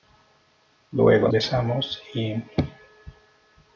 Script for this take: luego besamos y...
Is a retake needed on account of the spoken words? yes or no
no